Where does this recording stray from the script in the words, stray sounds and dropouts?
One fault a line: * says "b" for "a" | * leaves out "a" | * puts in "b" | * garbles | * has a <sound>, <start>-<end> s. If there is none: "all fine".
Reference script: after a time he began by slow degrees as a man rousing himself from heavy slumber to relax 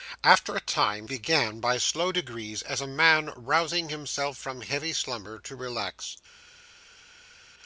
* leaves out "he"